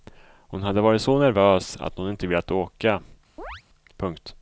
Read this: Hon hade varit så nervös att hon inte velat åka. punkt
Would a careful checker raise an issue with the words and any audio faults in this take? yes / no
yes